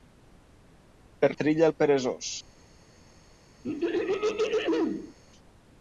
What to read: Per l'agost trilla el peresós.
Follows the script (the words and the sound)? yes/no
no